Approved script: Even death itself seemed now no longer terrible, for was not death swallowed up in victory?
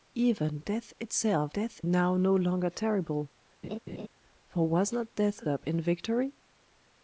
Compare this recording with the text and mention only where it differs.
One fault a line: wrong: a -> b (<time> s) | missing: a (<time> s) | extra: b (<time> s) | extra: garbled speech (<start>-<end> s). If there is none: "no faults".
wrong: seemed -> death (1.5 s)
missing: swallowed (5.5 s)